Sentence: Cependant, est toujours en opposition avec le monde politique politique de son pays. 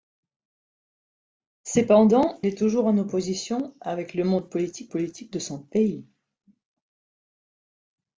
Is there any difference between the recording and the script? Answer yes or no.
no